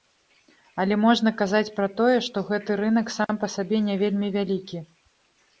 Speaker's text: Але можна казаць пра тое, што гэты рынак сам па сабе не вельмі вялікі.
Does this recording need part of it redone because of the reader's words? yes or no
no